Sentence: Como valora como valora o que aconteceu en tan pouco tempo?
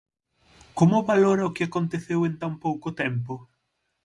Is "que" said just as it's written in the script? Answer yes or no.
yes